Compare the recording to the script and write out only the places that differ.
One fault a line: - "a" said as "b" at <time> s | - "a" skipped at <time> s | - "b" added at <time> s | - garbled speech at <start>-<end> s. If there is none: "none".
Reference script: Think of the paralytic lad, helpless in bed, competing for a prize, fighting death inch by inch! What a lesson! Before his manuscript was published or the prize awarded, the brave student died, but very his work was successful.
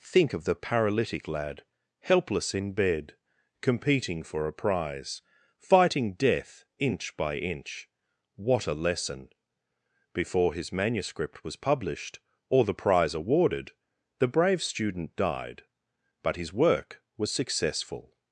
- "very" skipped at 16.4 s